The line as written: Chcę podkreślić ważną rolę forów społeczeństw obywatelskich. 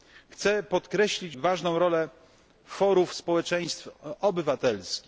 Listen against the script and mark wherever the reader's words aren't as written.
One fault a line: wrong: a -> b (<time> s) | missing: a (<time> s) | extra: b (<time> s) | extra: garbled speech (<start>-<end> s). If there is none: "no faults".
no faults